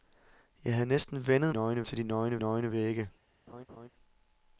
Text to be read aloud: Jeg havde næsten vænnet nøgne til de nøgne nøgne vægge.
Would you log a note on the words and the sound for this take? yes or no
yes